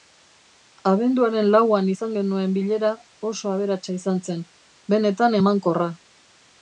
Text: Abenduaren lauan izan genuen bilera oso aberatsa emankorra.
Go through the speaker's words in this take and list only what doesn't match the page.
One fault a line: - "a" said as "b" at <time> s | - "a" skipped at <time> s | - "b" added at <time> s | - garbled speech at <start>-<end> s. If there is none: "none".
- "izan zen benetan" added at 4.0 s